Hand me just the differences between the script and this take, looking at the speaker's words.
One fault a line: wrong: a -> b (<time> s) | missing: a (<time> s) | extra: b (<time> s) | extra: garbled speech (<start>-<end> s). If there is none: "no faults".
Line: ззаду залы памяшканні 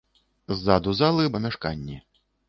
no faults